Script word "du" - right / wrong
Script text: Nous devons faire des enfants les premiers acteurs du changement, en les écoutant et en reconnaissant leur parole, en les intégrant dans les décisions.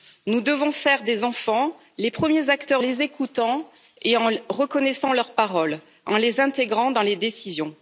wrong